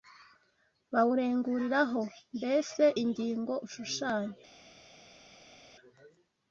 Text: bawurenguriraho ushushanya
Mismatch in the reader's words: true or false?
true